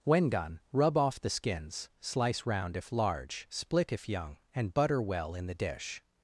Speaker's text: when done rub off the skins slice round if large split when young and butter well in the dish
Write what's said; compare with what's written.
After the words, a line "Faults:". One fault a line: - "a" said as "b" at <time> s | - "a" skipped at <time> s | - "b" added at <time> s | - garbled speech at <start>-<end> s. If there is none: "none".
when done rub off the skins slice round if large split if young and butter well in the dish
Faults:
- "when" said as "if" at 3.9 s